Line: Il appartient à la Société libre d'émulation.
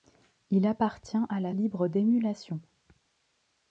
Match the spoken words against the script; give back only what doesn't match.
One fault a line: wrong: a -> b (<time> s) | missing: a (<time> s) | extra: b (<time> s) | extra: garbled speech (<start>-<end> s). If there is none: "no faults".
missing: Société (1.5 s)